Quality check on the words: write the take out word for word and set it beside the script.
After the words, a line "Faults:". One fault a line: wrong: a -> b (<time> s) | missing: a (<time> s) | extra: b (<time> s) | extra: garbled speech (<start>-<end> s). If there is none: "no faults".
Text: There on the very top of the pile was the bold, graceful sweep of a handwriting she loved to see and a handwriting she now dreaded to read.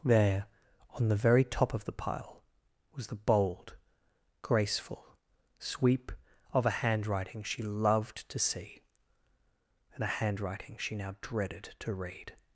There on the very top of the pile was the bold, graceful sweep of a handwriting she loved to see and a handwriting she now dreaded to read.
Faults:
no faults